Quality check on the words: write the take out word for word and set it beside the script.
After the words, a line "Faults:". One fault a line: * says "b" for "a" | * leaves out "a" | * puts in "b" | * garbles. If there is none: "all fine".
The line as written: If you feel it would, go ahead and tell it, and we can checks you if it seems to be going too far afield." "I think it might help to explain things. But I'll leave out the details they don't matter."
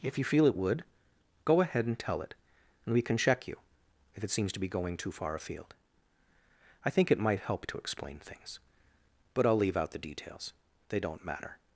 If you feel it would, go ahead and tell it, and we can check you if it seems to be going too far afield." "I think it might help to explain things. But I'll leave out the details they don't matter."
Faults:
* says "check" for "checks"